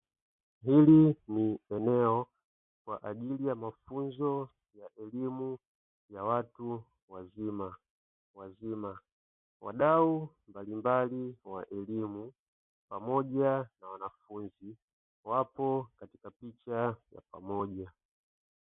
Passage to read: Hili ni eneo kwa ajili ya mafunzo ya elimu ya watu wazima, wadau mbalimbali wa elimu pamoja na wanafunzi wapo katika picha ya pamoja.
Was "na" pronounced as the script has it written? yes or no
yes